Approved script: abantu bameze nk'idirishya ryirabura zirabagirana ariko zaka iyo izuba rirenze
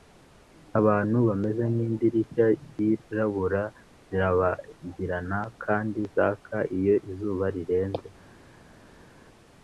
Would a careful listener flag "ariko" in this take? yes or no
yes